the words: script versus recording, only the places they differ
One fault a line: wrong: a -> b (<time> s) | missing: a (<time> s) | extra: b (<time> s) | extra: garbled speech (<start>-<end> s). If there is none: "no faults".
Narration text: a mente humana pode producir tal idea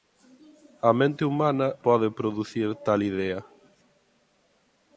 no faults